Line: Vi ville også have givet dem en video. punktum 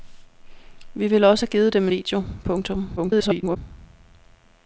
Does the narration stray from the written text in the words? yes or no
yes